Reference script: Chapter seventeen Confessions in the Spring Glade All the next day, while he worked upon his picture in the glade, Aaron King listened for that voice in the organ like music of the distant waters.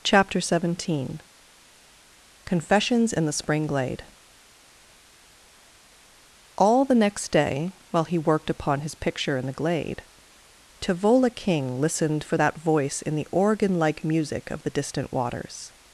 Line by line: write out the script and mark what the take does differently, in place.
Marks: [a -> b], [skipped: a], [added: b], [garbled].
Chapter seventeen Confessions in the Spring Glade All the next day, while he worked upon his picture in the glade, [Aaron -> Tavola] King listened for that voice in the organ like music of the distant waters.